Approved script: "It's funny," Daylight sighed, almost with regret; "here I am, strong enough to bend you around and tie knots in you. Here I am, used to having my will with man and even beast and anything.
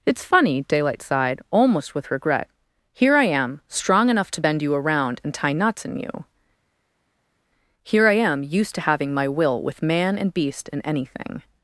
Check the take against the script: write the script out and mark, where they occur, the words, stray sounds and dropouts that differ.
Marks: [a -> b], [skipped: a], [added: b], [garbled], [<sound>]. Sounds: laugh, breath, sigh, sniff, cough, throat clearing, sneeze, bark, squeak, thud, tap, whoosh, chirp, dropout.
"It's funny," Daylight sighed, almost with regret; "here I am, strong enough to bend you around and tie knots in you. Here I am, used to having my will with man and [skipped: even] beast and anything.